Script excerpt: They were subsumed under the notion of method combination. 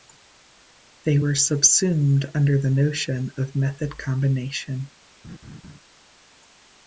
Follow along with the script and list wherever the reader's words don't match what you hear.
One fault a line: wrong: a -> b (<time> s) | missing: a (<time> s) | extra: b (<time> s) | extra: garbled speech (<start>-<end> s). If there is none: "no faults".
no faults